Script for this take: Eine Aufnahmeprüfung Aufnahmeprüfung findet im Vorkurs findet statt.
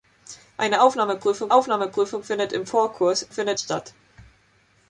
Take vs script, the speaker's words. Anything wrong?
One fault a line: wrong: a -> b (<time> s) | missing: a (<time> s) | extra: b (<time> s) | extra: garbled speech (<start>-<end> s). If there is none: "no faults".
no faults